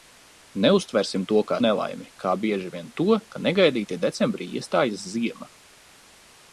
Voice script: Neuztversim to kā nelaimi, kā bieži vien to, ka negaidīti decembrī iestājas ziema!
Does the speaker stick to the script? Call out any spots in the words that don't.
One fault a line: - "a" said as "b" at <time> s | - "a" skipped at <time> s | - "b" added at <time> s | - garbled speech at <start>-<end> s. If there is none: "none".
none